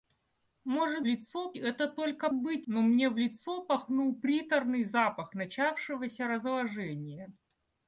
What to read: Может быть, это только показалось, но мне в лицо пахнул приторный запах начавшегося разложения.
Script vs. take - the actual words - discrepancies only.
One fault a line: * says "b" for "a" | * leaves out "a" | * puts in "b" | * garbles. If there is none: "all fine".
* says "лицо" for "быть"
* says "быть" for "показалось"